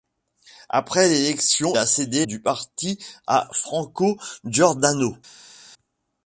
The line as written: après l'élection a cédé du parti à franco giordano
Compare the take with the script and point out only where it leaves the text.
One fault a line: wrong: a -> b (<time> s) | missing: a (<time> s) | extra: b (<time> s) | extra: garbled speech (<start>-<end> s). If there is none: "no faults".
no faults